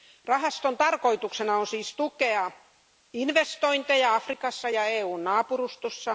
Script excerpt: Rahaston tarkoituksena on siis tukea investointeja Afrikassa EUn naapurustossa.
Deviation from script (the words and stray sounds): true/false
true